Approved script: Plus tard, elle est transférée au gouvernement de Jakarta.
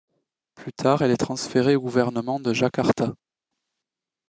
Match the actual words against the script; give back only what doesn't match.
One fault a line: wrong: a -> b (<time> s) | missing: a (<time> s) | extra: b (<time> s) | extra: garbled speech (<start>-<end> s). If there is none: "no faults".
no faults